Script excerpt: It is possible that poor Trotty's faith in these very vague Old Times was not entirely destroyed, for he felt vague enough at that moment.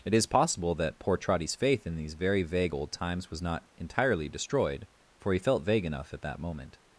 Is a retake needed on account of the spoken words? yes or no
no